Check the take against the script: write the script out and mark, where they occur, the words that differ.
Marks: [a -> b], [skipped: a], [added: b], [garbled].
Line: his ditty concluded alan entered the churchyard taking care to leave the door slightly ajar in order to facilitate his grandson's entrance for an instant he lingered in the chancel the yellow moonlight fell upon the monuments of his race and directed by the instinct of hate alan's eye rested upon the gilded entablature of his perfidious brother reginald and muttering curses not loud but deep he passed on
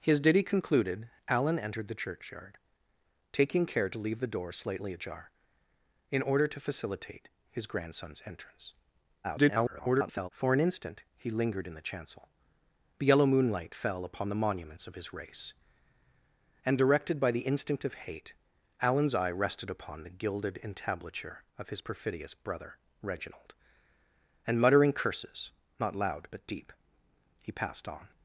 his ditty concluded alan entered the churchyard taking care to leave the door slightly ajar in order to facilitate his grandson's entrance [garbled] for an instant he lingered in the chancel the yellow moonlight fell upon the monuments of his race and directed by the instinct of hate alan's eye rested upon the gilded entablature of his perfidious brother reginald and muttering curses not loud but deep he passed on